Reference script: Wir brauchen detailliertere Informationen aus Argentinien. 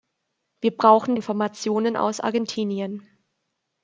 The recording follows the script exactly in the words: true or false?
false